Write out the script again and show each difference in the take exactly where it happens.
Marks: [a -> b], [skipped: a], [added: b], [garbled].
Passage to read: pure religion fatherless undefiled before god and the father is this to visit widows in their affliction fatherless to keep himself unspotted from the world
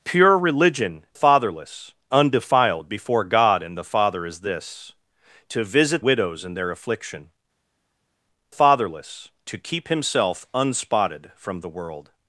pure religion fatherless undefiled before god and the father is this to visit widows in their affliction fatherless to keep himself unspotted from the world